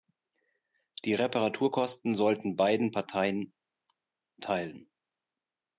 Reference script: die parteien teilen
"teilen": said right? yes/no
yes